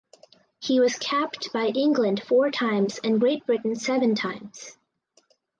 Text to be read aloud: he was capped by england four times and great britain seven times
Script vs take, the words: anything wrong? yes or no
no